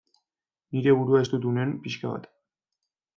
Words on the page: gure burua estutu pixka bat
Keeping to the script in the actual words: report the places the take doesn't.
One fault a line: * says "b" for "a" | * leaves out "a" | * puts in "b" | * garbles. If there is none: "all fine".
* says "nire" for "gure"
* puts in "nuen"